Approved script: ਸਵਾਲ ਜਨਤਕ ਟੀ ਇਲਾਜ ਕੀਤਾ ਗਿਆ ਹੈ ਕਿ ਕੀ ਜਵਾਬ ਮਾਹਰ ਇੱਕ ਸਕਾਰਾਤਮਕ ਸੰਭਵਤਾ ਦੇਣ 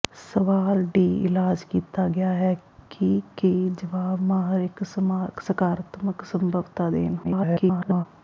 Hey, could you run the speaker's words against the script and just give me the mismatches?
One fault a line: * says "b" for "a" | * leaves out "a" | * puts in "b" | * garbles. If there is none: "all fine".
* leaves out "ਜਨਤਕ"
* garbles